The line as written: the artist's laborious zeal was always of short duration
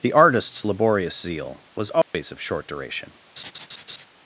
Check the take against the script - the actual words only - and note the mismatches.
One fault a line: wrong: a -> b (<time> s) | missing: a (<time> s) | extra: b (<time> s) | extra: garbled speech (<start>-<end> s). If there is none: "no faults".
no faults